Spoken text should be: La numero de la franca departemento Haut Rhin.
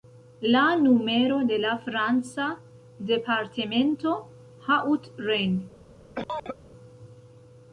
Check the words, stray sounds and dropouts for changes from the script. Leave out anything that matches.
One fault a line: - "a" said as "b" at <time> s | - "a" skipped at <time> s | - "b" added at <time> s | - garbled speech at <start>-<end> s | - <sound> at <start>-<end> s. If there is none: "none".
- cough at 6.2-6.6 s